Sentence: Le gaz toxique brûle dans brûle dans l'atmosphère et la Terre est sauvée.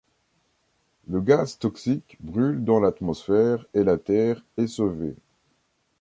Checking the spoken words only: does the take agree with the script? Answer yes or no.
no